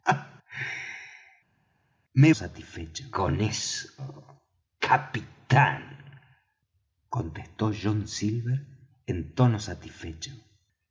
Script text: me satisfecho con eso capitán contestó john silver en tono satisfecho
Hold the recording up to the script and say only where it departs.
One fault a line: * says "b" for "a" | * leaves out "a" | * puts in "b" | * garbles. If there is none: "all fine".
all fine